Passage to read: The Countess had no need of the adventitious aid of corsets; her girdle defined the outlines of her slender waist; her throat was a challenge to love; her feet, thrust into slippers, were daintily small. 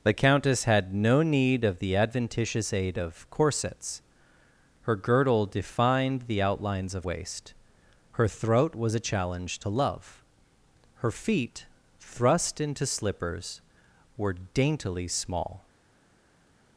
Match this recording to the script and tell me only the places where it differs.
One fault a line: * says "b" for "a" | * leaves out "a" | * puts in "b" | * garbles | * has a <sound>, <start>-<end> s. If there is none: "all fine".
* leaves out "her slender"